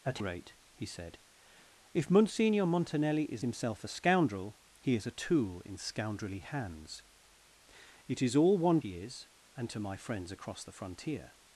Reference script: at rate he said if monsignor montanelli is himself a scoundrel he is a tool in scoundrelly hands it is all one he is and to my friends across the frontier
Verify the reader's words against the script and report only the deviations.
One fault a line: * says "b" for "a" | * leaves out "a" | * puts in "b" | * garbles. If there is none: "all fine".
all fine